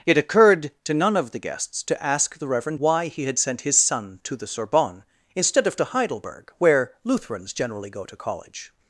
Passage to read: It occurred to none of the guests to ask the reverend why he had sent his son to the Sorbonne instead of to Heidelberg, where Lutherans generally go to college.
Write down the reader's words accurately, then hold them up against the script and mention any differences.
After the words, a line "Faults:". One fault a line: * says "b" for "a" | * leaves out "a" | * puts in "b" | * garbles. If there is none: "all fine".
It occurred to none of the guests to ask the reverend why he had sent his son to the Sorbonne instead of to Heidelberg, where Lutherans generally go to college.
Faults:
all fine